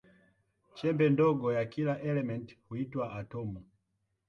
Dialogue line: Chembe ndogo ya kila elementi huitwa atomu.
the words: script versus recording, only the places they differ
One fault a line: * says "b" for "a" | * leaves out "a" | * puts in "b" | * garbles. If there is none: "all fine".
all fine